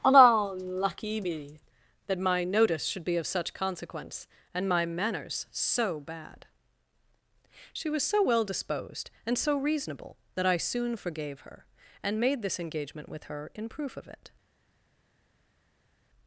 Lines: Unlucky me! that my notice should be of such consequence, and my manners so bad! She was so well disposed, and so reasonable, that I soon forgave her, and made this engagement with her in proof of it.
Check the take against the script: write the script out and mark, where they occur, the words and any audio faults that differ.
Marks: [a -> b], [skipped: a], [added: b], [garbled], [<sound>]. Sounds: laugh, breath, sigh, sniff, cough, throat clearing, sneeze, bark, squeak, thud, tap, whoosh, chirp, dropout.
Unlucky me! that my notice should be of such consequence, and my manners so bad! She was so well disposed, and so reasonable, that I soon forgave her, and made this engagement with her in proof of it.